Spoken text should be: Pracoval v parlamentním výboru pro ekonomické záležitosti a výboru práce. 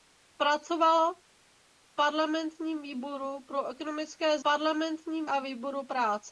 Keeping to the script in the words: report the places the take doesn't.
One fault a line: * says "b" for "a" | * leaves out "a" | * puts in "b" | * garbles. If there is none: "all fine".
* says "parlamentním" for "záležitosti"